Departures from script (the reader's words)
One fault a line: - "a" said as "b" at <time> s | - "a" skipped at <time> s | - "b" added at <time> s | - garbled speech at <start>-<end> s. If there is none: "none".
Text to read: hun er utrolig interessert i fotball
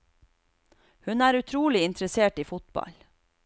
none